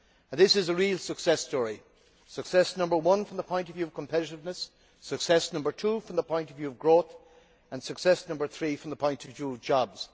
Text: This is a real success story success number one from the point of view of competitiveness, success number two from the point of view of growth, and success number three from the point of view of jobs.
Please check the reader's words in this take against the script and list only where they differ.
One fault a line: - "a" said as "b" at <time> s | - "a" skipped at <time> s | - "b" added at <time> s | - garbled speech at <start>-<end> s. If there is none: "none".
none